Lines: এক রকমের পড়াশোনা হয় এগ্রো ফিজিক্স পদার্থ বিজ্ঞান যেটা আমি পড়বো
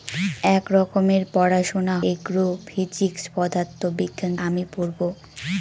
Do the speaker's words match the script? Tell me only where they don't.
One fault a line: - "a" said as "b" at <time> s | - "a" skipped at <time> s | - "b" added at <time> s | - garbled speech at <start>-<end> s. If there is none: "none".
- "হয়" skipped at 1.9 s
- "যেটা" skipped at 4.3 s